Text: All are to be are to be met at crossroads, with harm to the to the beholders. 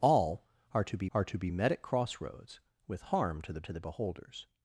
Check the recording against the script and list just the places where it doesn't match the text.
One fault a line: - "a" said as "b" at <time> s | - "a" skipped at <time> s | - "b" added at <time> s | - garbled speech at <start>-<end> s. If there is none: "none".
none